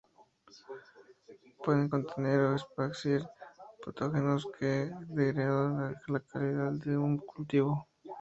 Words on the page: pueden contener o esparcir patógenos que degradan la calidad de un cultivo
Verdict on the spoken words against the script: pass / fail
pass